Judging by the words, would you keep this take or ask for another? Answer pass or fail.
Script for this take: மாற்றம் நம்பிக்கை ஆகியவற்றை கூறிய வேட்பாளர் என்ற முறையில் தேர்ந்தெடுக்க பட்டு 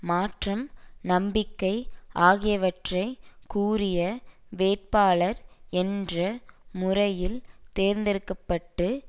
pass